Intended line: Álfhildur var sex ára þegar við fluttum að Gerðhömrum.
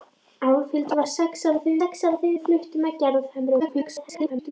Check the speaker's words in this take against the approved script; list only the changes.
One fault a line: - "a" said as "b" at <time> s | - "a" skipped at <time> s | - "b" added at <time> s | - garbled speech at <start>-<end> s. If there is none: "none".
- "sex ára þegar" added at 1.8 s
- garbled speech at 3.6-4.5 s